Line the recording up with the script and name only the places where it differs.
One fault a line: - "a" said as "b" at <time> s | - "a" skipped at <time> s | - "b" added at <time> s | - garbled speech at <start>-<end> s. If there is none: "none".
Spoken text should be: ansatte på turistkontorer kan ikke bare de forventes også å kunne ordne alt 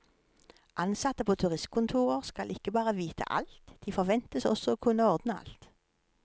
- "kan" said as "skal" at 2.2 s
- "vite alt" added at 3.0 s